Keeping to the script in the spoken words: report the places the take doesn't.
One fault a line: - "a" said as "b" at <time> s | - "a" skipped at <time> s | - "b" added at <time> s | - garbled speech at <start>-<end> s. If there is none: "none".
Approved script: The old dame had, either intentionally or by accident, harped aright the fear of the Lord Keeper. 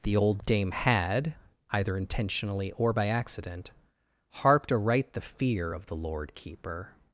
none